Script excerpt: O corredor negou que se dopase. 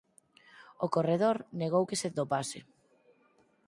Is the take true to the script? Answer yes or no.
yes